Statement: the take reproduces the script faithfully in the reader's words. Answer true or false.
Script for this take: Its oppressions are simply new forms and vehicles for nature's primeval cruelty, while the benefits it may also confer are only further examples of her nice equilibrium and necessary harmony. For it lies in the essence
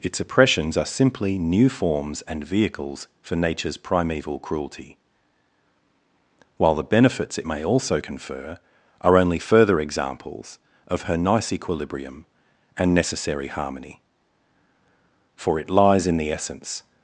true